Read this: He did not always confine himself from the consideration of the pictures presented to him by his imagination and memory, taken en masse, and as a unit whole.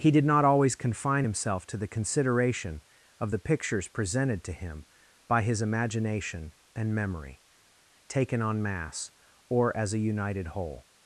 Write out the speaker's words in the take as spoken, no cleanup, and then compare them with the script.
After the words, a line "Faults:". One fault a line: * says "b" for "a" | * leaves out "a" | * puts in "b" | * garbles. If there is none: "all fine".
He did not always confine himself to the consideration of the pictures presented to him by his imagination and memory, taken en masse, or as a united whole.
Faults:
* says "to" for "from"
* says "or" for "and"
* says "united" for "unit"